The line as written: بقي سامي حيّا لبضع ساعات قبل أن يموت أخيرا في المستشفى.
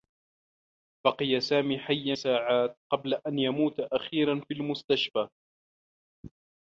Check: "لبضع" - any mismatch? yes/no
yes